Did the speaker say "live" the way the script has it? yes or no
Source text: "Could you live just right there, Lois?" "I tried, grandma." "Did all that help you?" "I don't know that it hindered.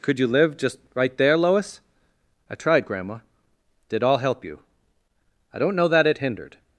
yes